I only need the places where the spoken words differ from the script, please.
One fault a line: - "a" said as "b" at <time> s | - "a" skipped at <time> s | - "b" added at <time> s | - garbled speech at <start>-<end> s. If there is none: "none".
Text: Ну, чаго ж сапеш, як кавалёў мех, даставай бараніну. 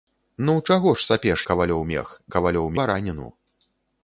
- "як" skipped at 1.4 s
- "даставай" said as "кавалёў" at 2.4 s